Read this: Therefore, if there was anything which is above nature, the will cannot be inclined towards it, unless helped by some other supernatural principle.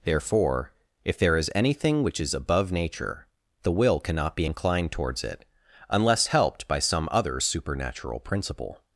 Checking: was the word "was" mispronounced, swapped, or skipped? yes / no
yes